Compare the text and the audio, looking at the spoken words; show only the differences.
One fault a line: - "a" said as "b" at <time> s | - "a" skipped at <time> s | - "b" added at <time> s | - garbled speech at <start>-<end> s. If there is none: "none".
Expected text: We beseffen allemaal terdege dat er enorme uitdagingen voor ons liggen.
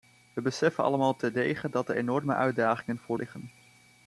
- "ons" skipped at 3.2 s